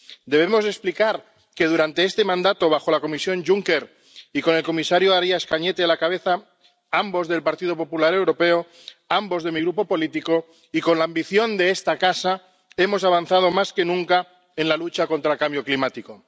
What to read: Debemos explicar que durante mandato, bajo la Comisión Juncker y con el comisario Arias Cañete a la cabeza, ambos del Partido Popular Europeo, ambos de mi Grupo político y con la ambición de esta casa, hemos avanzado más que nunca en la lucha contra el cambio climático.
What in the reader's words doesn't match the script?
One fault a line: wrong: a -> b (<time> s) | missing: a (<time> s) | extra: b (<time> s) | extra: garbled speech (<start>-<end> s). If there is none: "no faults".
extra: este (2.0 s)